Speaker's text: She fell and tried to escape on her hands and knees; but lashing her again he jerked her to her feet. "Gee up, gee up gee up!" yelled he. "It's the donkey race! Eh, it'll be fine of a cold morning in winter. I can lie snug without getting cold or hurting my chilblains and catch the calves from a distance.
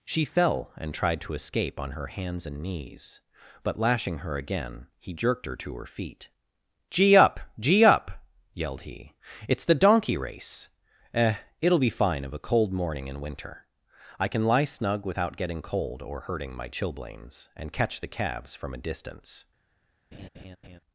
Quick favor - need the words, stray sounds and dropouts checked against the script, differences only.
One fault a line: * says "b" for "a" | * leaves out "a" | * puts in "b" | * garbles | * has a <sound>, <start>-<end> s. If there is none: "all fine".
* leaves out "gee up"
* has a laugh, 20.1-20.8 s